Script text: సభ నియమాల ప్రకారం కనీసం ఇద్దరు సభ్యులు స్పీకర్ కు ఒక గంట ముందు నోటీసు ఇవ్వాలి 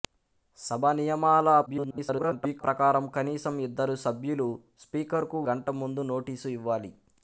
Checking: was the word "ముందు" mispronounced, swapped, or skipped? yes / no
no